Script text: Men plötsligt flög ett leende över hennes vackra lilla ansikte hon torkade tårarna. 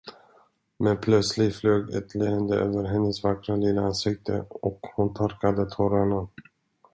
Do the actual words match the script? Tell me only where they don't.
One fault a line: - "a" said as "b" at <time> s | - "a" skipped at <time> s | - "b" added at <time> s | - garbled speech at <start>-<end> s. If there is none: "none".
- "och" added at 4.5 s